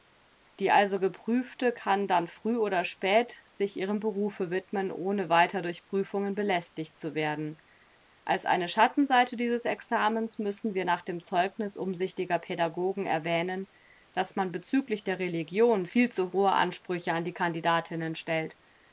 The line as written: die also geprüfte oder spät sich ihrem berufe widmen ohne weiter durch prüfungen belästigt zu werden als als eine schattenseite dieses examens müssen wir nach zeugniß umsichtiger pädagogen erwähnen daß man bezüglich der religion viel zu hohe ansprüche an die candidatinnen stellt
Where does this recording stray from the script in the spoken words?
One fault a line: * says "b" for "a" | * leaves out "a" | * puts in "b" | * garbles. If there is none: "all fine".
* puts in "kann dann früh"
* leaves out "als"
* puts in "dem"